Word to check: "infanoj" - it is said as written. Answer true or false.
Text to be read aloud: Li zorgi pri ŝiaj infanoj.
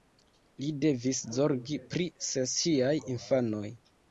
true